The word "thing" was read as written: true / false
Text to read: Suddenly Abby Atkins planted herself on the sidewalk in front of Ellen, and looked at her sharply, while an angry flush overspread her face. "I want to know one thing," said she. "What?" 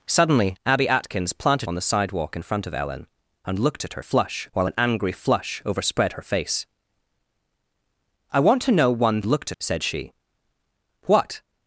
false